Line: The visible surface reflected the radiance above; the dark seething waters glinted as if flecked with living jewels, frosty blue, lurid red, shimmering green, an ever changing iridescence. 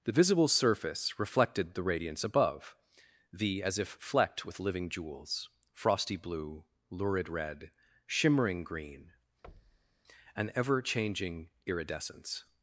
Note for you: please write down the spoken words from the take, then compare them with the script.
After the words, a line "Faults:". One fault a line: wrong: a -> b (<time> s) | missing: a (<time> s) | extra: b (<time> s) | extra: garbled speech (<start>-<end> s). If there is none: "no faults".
The visible surface reflected the radiance above; the as if flecked with living jewels, frosty blue, lurid red, shimmering green, an ever changing iridescence.
Faults:
missing: dark seething waters glinted (3.6 s)